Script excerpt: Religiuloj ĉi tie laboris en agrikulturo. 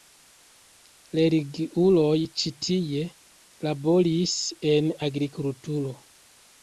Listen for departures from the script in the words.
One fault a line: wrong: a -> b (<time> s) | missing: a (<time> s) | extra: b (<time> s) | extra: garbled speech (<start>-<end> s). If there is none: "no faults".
no faults